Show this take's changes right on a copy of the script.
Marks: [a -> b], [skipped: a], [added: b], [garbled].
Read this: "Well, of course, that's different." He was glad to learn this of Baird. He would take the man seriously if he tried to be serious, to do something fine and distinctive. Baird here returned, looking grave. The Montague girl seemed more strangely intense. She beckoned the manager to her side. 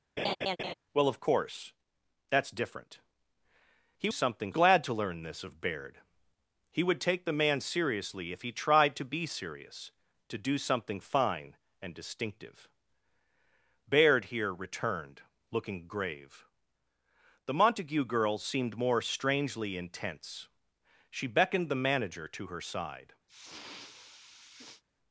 "Well, of course, that's different." He [was -> something] glad to learn this of Baird. He would take the man seriously if he tried to be serious, to do something fine and distinctive. Baird here returned, looking grave. The Montague girl seemed more strangely intense. She beckoned the manager to her side.